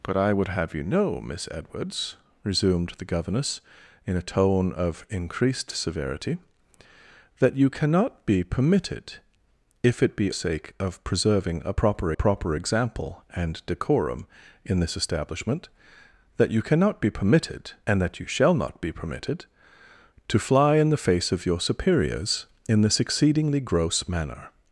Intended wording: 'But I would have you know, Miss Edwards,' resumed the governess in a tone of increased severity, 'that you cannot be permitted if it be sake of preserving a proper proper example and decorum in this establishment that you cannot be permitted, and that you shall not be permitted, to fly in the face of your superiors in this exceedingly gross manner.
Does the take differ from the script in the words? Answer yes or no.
no